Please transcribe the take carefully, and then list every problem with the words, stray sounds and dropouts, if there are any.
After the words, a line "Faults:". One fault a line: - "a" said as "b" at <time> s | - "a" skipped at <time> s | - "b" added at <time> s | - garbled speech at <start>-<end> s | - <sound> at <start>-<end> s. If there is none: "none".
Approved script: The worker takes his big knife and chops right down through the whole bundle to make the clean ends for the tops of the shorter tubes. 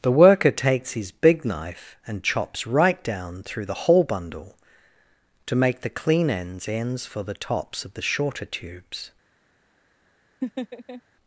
The worker takes his big knife and chops right down through the whole bundle to make the clean ends ends for the tops of the shorter tubes.
Faults:
- "ends" added at 6.7 s
- laugh at 10.4-11.0 s